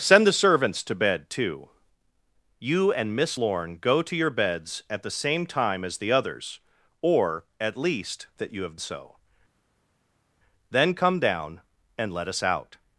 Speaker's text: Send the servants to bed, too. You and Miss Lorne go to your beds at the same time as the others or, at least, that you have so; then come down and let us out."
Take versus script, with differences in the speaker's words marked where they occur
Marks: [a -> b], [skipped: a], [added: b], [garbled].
Send the servants to bed, too. You and Miss Lorne go to your beds at the same time as the others or, at least, that you have so; then come down and let us out."